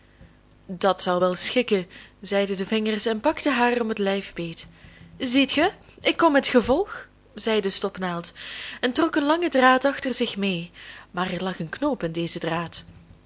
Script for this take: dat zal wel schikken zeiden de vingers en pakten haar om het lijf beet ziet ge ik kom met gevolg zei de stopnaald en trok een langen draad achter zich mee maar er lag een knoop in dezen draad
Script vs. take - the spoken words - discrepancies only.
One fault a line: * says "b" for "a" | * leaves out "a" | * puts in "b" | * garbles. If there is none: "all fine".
all fine